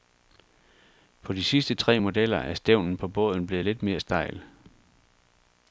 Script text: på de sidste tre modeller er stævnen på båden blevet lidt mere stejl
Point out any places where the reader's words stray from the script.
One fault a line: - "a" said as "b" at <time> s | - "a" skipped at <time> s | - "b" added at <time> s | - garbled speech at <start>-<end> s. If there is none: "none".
none